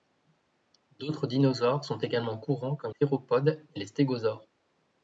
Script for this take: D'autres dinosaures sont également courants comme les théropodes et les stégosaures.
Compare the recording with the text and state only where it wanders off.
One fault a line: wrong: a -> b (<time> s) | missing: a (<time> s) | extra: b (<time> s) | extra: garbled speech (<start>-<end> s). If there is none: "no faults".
missing: les (3.0 s)